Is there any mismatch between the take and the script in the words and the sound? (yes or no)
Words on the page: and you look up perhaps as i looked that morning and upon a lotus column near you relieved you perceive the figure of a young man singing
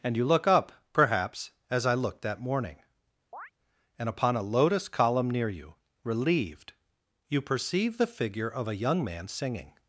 yes